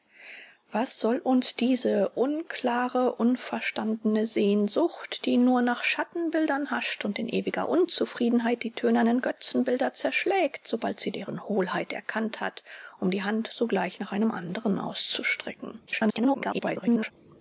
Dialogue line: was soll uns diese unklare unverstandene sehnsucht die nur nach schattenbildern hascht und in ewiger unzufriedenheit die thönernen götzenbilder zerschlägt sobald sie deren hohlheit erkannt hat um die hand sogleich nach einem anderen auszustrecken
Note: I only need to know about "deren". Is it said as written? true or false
true